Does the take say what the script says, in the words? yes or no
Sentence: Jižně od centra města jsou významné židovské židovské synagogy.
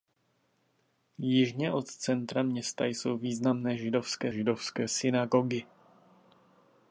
yes